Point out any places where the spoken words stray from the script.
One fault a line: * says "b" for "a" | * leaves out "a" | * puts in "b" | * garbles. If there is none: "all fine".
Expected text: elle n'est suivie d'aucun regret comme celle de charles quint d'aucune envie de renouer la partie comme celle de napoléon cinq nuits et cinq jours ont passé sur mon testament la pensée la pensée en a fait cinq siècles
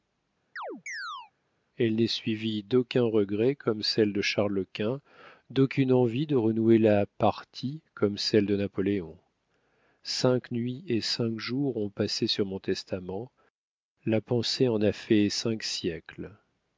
* leaves out "la pensée"